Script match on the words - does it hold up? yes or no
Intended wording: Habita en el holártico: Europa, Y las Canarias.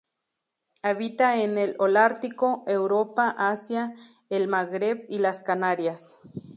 no